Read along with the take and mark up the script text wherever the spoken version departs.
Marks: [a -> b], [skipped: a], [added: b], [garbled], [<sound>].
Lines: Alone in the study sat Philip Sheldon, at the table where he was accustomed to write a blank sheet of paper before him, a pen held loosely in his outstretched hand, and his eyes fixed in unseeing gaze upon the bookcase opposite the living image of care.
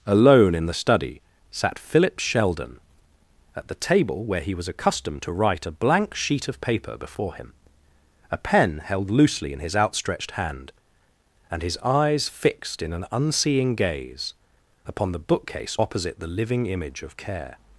Alone in the study sat Philip Sheldon, at the table where he was accustomed to write a blank sheet of paper before him, a pen held loosely in his outstretched hand, and his eyes fixed in [added: an] unseeing gaze upon the bookcase opposite the living image of care.